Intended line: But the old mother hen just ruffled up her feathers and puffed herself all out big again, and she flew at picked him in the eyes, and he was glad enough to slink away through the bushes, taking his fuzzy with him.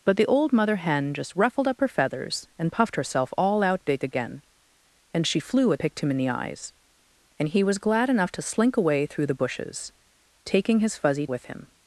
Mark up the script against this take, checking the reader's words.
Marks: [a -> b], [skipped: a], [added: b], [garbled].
But the old mother hen just ruffled up her feathers and puffed herself all out big again, and she flew at picked him in the eyes, and he was glad enough to slink away through the bushes, taking his fuzzy with him.